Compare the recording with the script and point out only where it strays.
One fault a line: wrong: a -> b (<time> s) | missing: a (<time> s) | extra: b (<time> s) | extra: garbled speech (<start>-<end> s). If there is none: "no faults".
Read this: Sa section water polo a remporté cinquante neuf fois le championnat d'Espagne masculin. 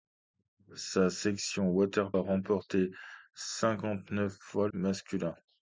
missing: polo (2.1 s)
missing: le championnat d'Espagne (4.7 s)